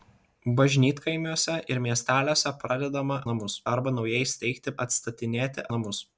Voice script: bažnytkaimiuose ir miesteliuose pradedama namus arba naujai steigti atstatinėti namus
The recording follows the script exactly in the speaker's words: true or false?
true